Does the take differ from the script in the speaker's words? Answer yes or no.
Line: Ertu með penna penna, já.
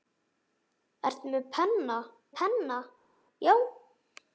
no